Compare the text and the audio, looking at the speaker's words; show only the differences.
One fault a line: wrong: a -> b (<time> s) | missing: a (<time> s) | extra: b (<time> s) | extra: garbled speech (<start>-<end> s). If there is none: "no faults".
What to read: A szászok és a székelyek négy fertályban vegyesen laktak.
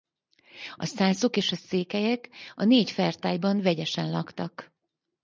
extra: a (2.5 s)